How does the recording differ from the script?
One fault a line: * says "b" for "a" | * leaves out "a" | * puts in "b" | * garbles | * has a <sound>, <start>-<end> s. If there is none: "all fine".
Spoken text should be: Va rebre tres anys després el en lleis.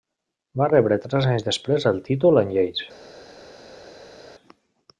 * puts in "títol"